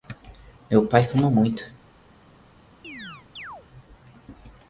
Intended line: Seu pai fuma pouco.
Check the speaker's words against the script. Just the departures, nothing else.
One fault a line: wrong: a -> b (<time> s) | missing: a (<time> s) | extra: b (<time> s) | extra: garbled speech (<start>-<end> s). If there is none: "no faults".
wrong: Seu -> Meu (0.7 s)
wrong: pouco -> muito (1.3 s)